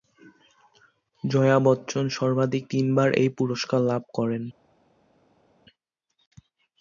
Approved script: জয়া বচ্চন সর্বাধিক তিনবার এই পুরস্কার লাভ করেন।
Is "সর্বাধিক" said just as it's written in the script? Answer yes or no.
yes